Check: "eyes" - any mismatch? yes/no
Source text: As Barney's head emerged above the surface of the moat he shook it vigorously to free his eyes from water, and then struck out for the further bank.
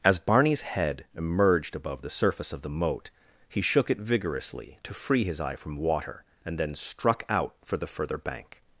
yes